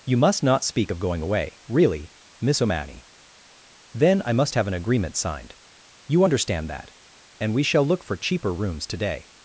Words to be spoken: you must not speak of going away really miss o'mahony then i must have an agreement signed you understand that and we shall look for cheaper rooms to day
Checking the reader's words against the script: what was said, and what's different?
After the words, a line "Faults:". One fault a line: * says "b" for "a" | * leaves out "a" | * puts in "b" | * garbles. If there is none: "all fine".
you must not speak of going away really miss o'mahony then i must have an agreement signed you understand that and we shall look for cheaper rooms to day
Faults:
all fine